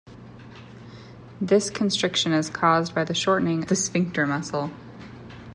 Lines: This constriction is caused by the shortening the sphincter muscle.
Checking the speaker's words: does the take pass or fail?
pass